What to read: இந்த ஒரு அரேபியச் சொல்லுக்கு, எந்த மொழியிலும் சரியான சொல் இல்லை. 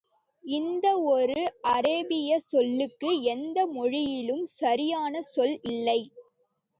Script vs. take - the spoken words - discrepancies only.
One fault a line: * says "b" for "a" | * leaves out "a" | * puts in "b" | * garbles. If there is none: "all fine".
all fine